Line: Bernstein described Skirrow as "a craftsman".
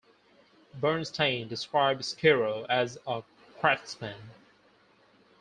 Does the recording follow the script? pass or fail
pass